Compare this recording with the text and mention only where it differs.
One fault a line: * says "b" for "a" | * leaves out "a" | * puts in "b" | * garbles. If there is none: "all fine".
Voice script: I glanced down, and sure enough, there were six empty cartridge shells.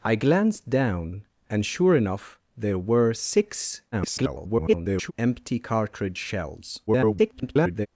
* garbles
* garbles